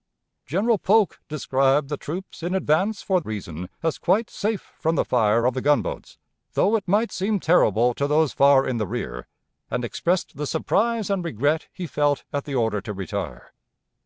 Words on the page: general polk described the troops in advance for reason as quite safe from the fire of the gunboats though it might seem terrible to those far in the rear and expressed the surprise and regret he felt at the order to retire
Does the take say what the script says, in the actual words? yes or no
yes